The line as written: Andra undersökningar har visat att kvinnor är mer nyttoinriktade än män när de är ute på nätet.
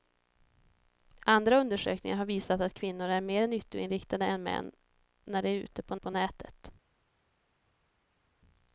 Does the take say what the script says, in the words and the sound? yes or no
no